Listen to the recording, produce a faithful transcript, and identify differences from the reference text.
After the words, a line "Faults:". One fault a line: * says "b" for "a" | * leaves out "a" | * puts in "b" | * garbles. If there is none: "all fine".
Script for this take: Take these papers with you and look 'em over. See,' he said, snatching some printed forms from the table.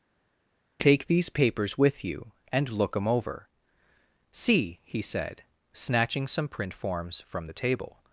Take these papers with you and look 'em over. See,' he said, snatching some print forms from the table.
Faults:
* says "print" for "printed"